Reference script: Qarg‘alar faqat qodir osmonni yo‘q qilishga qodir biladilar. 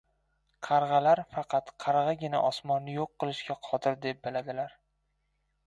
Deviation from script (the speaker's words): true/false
true